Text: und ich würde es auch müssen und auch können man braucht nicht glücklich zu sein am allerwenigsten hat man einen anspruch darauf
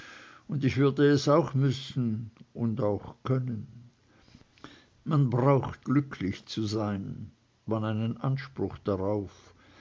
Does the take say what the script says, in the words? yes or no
no